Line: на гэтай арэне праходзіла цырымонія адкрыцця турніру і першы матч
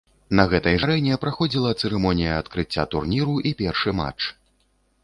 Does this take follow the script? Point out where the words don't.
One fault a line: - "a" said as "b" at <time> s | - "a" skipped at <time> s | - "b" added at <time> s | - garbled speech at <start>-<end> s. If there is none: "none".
none